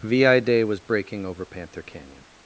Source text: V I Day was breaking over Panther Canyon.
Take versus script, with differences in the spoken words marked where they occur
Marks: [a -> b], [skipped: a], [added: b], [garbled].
V I Day was breaking over Panther Canyon.